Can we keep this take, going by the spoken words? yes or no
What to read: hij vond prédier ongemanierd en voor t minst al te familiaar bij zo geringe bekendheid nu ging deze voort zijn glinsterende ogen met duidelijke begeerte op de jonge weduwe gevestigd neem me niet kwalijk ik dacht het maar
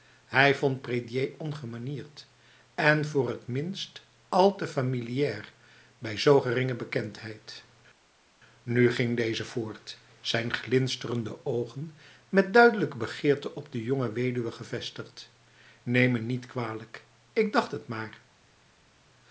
yes